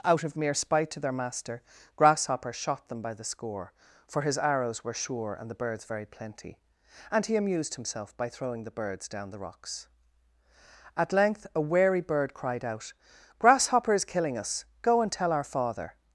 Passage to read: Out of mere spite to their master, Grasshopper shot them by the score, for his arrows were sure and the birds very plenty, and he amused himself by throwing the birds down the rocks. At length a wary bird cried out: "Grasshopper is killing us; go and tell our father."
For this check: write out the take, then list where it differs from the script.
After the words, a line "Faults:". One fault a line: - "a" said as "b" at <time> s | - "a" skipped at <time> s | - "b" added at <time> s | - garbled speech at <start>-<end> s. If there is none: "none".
Out of mere spite to their master, Grasshopper shot them by the score, for his arrows were sure and the birds very plenty, and he amused himself by throwing the birds down the rocks. At length a wary bird cried out: "Grasshopper is killing us; go and tell our father."
Faults:
none